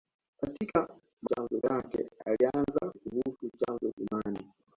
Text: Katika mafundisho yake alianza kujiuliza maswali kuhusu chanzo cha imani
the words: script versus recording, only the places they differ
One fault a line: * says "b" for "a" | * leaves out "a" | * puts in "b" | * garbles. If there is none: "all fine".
* says "chanzo" for "mafundisho"
* leaves out "kujiuliza maswali"
* leaves out "cha"